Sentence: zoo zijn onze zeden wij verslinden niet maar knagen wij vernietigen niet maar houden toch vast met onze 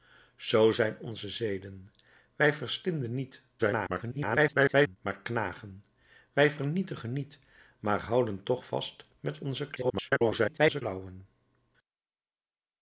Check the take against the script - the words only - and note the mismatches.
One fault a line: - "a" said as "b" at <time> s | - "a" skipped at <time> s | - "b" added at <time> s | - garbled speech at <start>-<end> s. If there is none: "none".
- garbled speech at 3.6-5.0 s
- garbled speech at 9.8-10.8 s